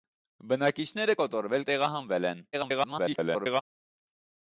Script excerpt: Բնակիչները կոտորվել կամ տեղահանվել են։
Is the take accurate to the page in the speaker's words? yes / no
no